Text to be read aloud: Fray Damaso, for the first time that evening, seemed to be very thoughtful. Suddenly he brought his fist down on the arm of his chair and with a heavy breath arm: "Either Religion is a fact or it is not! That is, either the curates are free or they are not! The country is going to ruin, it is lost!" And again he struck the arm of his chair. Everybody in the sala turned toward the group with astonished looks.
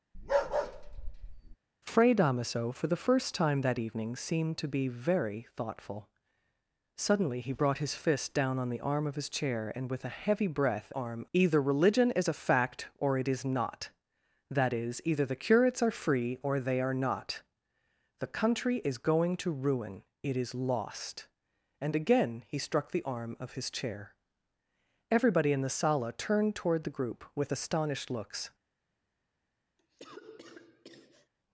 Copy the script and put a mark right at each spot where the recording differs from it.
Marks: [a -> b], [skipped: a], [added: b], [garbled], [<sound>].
[bark] Fray Damaso, for the first time that evening, seemed to be very thoughtful. Suddenly he brought his fist down on the arm of his chair and with a heavy breath arm: "Either Religion is a fact or it is not! That is, either the curates are free or they are not! The country is going to ruin, it is lost!" And again he struck the arm of his chair. Everybody in the sala turned toward the group with astonished looks. [cough]